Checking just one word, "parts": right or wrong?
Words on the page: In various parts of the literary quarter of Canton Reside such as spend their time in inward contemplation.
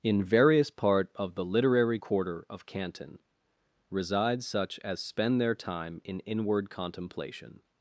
wrong